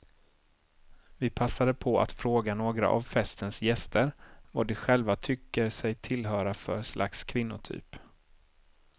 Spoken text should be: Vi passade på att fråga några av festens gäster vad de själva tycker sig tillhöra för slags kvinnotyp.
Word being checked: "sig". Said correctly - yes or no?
yes